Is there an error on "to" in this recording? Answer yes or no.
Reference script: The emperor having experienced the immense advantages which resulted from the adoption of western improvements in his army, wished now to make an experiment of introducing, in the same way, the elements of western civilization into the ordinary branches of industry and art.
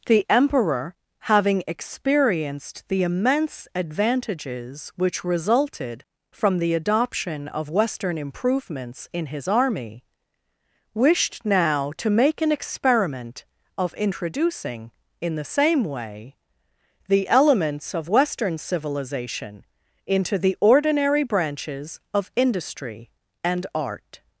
no